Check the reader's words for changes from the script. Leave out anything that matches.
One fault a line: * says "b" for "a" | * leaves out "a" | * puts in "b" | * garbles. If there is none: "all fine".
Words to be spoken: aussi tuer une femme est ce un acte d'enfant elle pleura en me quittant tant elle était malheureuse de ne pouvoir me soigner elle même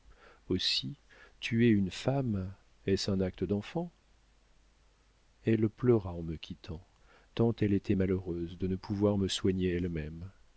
all fine